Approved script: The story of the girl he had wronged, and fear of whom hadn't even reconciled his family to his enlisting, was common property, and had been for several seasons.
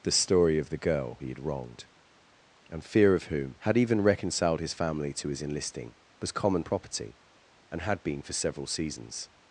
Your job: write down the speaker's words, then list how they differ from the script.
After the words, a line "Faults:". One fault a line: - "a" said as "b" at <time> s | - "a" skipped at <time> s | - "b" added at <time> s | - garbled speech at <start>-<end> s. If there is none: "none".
The story of the girl he had wronged, and fear of whom had even reconciled his family to his enlisting, was common property, and had been for several seasons.
Faults:
- "hadn't" said as "had" at 3.6 s